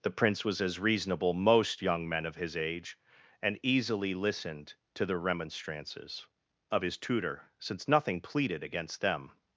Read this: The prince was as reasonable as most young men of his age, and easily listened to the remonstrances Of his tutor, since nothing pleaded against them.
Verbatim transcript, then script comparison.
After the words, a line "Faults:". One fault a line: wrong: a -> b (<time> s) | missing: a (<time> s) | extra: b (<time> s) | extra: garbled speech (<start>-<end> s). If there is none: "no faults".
The prince was as reasonable most young men of his age, and easily listened to the remonstrances Of his tutor, since nothing pleaded against them.
Faults:
missing: as (1.3 s)